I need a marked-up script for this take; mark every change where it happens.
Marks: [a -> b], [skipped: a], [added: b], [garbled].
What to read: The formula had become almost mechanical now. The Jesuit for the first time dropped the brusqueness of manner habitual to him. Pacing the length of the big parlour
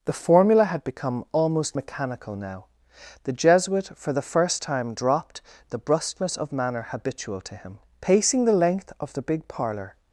The formula had become almost mechanical now. The Jesuit for the first time dropped the brusqueness of manner habitual to him. Pacing the length of the big parlour